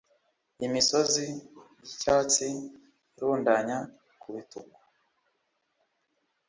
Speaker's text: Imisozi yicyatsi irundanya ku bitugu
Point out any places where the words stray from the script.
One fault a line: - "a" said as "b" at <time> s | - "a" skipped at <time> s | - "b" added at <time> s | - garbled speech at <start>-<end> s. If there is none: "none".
none